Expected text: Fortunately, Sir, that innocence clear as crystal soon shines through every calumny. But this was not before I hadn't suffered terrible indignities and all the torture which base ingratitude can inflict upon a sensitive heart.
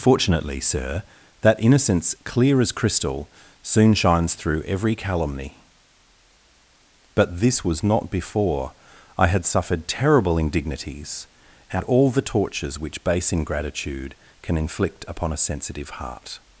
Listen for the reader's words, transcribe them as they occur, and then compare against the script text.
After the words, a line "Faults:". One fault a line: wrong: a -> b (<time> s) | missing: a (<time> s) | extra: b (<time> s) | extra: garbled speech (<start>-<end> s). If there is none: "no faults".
Fortunately, Sir, that innocence clear as crystal soon shines through every calumny. But this was not before I had suffered terrible indignities and all the tortures which base ingratitude can inflict upon a sensitive heart.
Faults:
wrong: hadn't -> had (9.3 s)
wrong: torture -> tortures (12.2 s)